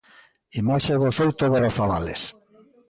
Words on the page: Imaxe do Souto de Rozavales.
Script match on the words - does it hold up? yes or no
yes